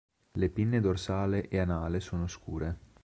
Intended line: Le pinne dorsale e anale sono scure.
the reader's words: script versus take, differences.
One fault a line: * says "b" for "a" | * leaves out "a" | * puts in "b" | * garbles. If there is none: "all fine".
all fine